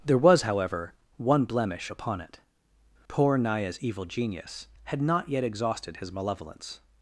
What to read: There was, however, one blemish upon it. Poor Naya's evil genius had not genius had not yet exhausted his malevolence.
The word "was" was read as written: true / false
true